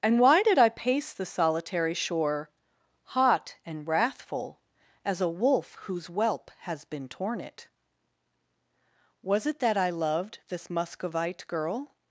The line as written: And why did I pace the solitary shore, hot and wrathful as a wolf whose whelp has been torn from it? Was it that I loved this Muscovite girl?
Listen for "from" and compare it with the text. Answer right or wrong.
wrong